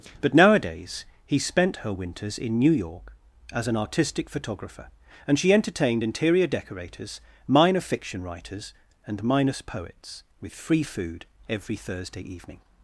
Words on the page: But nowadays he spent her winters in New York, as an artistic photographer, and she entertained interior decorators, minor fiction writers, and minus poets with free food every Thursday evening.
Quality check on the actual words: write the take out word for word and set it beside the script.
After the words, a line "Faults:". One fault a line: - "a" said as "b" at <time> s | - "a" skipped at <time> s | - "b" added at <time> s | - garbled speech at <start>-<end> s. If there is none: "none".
But nowadays he spent her winters in New York, as an artistic photographer, and she entertained interior decorators, minor fiction writers, and minus poets with free food every Thursday evening.
Faults:
none